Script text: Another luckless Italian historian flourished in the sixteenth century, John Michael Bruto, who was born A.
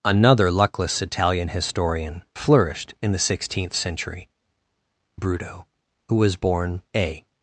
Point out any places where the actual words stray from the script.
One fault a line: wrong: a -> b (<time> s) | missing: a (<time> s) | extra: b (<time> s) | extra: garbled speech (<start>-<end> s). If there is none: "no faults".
missing: John Michael (4.3 s)